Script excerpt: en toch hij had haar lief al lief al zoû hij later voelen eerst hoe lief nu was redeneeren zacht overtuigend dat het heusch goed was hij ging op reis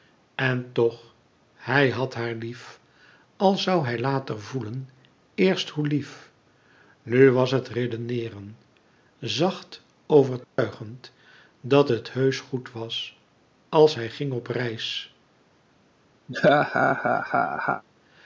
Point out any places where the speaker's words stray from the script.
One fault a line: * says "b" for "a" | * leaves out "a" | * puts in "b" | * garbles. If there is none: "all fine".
* leaves out "lief al"
* puts in "het"
* puts in "als"